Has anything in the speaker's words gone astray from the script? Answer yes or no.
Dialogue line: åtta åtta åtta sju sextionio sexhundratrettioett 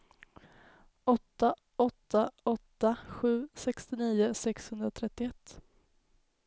no